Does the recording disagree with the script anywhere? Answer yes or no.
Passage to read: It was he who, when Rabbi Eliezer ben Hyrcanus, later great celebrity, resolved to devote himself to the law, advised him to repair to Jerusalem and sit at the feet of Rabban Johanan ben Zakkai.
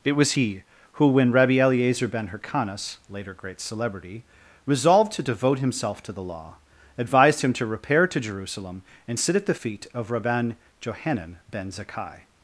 no